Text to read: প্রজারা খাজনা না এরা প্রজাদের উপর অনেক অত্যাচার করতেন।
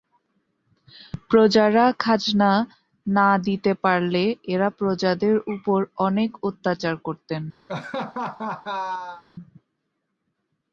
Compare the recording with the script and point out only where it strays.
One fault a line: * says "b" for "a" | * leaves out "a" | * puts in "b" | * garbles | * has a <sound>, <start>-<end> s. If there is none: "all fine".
* puts in "দিতে পারলে"
* has a laugh, 7.7-9.2 s